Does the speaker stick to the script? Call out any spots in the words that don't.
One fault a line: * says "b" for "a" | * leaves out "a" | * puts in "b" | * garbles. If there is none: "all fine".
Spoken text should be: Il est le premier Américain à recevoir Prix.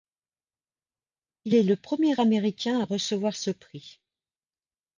* puts in "ce"